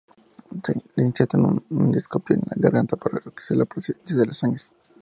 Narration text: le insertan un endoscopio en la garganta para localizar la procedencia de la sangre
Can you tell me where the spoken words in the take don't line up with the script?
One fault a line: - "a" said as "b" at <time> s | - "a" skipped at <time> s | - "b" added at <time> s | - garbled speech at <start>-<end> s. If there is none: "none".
none